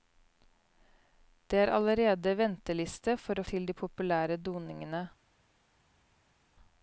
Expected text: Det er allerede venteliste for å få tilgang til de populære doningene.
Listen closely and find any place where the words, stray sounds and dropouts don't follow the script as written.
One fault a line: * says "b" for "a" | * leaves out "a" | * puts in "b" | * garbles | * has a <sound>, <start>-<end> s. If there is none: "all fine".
* leaves out "få tilgang"